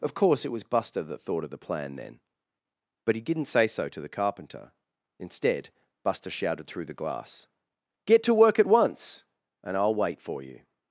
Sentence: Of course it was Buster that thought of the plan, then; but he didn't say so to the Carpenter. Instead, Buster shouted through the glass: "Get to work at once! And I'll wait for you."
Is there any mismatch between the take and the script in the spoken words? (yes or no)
no